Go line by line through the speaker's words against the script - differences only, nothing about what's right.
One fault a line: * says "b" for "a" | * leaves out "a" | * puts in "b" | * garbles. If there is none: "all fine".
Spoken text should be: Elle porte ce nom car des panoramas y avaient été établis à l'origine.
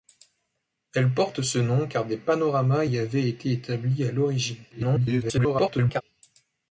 * garbles